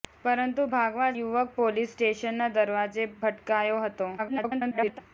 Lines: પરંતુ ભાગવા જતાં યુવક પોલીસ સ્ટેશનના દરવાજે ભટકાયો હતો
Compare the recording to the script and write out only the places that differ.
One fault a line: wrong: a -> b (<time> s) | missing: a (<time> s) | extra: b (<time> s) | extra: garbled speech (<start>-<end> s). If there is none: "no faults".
missing: જતાં (1.1 s)
extra: garbled speech (4.2-5.0 s)